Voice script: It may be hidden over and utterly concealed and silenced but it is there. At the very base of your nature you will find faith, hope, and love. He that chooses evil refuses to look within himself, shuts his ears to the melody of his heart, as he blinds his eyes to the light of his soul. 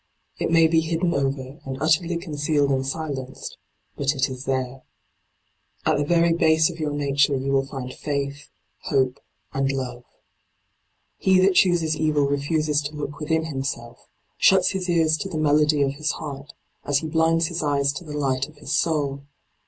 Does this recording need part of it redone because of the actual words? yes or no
no